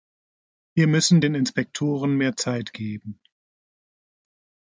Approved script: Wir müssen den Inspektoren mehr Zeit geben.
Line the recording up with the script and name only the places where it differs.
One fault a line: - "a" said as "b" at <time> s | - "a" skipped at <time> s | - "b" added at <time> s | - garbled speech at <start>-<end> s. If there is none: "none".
none